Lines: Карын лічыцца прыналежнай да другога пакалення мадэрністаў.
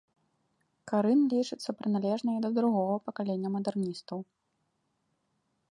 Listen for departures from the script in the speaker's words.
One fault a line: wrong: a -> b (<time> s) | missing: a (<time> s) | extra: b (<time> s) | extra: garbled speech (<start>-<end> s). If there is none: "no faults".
no faults